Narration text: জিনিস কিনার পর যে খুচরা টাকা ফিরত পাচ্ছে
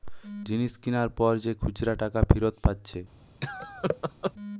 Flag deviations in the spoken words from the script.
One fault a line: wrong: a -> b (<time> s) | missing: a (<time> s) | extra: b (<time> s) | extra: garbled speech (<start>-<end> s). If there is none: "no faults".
no faults